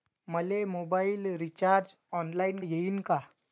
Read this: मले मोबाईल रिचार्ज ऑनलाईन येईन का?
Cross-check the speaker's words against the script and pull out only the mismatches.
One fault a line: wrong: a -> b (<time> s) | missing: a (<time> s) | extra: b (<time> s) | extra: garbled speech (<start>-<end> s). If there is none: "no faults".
no faults